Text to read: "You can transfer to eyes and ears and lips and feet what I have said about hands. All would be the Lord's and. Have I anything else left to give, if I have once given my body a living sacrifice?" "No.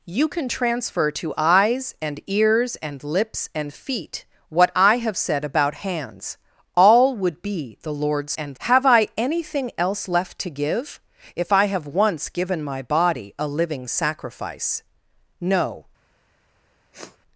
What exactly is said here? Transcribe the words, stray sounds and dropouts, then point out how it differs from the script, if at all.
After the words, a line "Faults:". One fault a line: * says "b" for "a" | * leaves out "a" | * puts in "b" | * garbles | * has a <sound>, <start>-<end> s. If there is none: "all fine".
"You can transfer to eyes and ears and lips and feet what I have said about hands. All would be the Lord's and. Have I anything else left to give, if I have once given my body a living sacrifice?" "No.
Faults:
* has a sniff, 16.9-17.2 s